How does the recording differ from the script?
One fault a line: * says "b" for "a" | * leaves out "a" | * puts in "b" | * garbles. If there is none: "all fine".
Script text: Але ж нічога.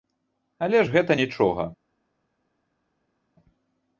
* puts in "гэта"